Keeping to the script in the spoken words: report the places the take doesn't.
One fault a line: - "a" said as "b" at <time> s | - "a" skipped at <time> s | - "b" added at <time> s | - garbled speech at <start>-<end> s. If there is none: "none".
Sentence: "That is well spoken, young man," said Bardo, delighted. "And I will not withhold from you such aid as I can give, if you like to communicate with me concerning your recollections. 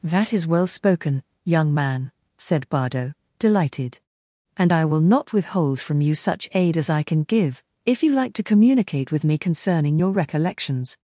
none